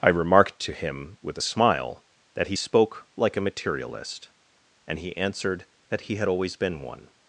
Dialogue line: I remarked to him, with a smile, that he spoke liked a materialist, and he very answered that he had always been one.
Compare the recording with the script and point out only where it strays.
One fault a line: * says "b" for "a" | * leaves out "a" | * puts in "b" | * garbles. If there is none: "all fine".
* says "like" for "liked"
* leaves out "very"